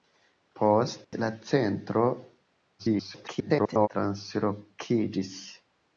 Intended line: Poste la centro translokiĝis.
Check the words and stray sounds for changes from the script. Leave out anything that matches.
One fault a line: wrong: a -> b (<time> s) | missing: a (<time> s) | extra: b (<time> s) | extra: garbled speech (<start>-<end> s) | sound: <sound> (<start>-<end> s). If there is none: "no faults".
sound: dropout (1.0-1.1 s)
extra: garbled speech (2.8-3.9 s)